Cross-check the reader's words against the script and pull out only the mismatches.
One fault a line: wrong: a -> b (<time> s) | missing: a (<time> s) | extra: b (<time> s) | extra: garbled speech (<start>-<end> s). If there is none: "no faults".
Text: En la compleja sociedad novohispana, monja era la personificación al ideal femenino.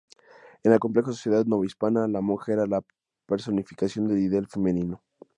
extra: la (2.1 s)
wrong: al -> del (4.1 s)